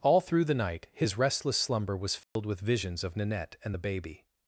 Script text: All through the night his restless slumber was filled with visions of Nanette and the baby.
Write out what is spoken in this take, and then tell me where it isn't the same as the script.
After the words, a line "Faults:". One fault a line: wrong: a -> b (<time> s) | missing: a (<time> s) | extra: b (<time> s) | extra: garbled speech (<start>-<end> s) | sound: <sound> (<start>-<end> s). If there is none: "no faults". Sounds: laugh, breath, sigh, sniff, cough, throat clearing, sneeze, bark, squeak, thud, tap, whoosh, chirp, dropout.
All through the night his restless slumber was filled with visions of Nanette and the baby.
Faults:
sound: dropout (2.2-2.4 s)